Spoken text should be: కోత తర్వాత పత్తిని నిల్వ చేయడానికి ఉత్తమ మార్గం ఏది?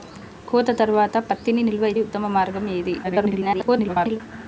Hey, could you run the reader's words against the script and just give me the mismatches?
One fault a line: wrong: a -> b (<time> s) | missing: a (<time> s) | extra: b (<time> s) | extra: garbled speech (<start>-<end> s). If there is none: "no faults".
missing: చేయడానికి (1.9 s)
extra: garbled speech (3.0-4.2 s)